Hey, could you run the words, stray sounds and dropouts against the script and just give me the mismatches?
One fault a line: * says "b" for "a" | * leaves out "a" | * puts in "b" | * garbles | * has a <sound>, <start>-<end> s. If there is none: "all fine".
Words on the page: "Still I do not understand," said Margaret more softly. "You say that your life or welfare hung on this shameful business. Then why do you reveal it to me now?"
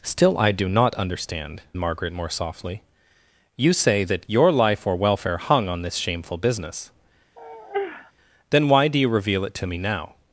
* leaves out "said"
* has a sigh, 7.4-8.1 s